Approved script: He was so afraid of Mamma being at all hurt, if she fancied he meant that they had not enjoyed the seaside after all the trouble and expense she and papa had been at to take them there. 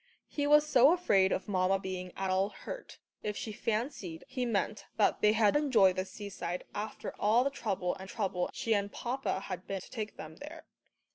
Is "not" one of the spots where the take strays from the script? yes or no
yes